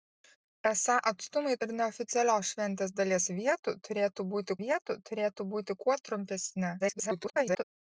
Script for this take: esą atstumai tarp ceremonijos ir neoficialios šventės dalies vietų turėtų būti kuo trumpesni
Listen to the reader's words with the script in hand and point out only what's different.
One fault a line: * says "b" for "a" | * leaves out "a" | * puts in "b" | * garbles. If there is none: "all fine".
* leaves out "tarp ceremonijos"
* puts in "vietų turėtų būti"
* garbles